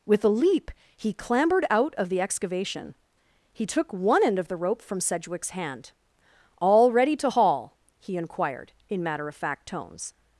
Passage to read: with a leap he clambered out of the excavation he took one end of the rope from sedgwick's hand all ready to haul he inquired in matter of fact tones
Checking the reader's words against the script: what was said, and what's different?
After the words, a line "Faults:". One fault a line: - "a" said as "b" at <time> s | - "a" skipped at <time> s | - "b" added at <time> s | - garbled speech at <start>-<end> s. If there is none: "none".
with a leap he clambered out of the excavation he took one end of the rope from sedgwick's hand all ready to haul he inquired in matter of fact tones
Faults:
none